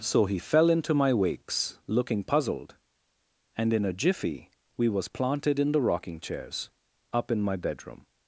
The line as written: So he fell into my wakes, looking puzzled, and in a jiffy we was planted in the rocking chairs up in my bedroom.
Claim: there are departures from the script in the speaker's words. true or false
false